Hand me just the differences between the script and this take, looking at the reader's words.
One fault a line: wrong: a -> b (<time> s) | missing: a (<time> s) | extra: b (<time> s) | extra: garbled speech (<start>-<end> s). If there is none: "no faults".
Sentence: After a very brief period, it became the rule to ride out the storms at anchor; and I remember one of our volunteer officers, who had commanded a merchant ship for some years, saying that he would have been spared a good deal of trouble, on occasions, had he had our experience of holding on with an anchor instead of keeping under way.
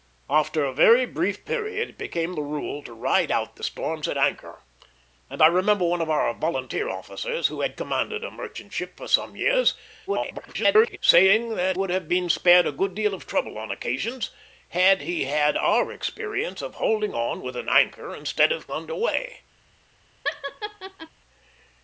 extra: garbled speech (10.1-11.0 s)
missing: he (11.8 s)
missing: keeping (18.7 s)